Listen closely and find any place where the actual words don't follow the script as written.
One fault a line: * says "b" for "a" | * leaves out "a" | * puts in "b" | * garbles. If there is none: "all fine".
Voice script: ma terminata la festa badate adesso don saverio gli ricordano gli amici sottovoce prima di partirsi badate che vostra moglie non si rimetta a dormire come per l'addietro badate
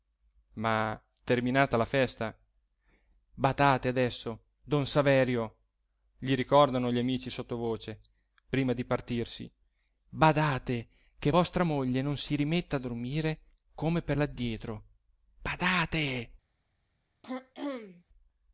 all fine